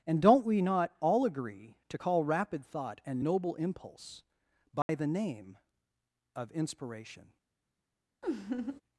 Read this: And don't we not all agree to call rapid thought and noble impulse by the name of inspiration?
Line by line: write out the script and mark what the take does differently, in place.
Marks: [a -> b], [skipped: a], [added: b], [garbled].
And don't we not all agree to call rapid thought and noble impulse by the name of inspiration?